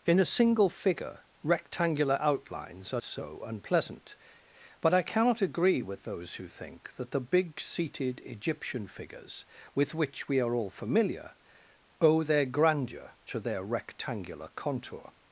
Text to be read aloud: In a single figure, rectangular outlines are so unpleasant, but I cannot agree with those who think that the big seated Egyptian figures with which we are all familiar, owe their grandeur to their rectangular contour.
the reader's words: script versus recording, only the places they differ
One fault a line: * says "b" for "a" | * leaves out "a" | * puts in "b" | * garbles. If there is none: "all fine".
all fine